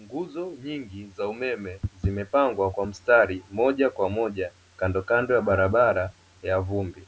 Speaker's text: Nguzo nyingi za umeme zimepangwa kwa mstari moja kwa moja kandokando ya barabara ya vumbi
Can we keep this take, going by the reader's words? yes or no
yes